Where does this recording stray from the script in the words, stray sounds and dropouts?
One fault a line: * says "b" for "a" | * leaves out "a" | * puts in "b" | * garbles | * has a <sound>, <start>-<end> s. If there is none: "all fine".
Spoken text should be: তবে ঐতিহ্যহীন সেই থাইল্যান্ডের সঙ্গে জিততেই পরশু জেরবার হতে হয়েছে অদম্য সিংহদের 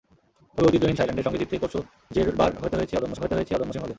* leaves out "সেই"
* puts in "হতে হয়েছে অদম্য"